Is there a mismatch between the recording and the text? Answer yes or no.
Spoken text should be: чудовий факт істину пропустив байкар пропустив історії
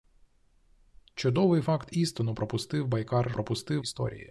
no